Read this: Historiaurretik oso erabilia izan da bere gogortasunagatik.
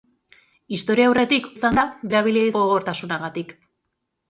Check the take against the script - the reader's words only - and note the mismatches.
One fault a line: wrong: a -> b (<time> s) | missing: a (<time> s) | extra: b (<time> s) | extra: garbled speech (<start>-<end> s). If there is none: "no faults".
missing: oso erabilia (1.4 s)
wrong: bere -> erabilia (2.1 s)